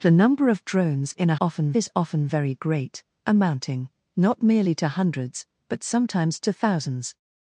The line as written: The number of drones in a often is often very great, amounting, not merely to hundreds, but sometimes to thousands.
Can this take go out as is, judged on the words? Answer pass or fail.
pass